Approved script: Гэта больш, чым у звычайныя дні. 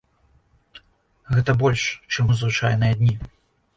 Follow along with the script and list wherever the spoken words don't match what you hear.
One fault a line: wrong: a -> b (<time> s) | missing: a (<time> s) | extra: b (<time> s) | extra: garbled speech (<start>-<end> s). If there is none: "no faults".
no faults